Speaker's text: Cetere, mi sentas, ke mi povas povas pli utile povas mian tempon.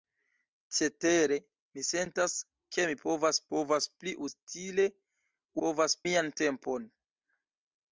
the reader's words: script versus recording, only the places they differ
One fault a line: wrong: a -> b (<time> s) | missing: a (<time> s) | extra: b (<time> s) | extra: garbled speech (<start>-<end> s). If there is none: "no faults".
no faults